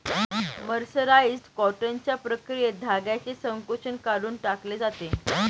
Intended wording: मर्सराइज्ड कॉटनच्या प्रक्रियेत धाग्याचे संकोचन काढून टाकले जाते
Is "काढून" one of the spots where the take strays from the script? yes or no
no